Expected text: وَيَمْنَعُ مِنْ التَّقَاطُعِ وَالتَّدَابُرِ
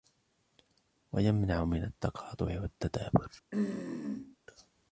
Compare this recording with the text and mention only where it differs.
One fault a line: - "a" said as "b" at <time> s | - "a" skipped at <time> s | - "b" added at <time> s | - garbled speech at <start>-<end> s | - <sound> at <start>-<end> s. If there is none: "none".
- throat clearing at 3.5-4.4 s